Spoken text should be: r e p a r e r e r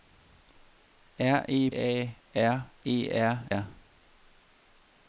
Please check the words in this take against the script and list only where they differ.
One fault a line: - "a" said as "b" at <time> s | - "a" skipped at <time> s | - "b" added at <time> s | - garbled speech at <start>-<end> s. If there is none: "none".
- "p" skipped at 1.7 s
- "e" skipped at 3.5 s